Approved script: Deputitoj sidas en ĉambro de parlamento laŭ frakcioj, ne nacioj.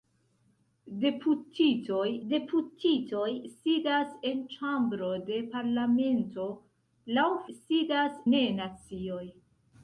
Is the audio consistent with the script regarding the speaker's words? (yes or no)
no